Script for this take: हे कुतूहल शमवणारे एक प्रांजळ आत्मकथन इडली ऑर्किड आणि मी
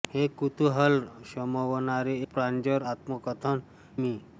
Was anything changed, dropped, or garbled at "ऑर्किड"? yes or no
yes